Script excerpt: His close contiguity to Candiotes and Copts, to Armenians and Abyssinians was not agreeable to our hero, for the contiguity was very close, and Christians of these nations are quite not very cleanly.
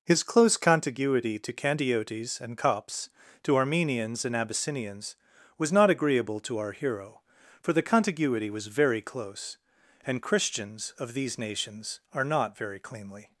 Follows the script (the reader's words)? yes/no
no